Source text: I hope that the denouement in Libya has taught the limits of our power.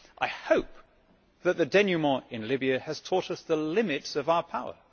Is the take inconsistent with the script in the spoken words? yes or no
yes